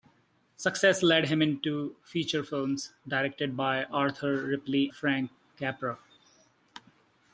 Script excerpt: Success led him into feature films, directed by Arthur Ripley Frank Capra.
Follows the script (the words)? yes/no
yes